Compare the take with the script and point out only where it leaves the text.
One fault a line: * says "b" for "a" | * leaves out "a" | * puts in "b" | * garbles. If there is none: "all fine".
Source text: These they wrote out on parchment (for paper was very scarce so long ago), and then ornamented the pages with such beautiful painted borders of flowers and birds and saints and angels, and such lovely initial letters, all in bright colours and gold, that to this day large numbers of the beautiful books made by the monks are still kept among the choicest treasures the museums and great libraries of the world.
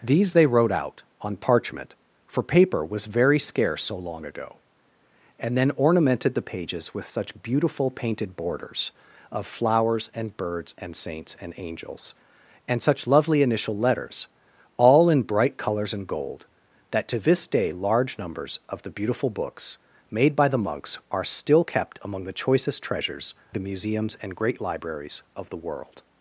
all fine